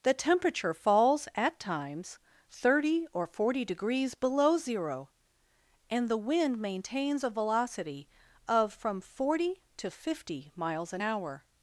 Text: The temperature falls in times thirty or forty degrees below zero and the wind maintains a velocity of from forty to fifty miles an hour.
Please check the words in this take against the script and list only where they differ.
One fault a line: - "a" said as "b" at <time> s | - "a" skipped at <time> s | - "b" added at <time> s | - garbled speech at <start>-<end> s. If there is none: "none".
- "in" said as "at" at 1.4 s